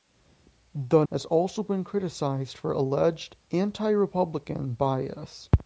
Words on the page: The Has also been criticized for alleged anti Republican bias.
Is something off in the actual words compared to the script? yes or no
no